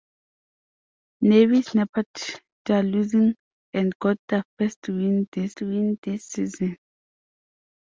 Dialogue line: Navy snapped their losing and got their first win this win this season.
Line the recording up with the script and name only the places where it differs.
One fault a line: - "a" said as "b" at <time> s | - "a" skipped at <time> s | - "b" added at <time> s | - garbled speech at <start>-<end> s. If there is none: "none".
none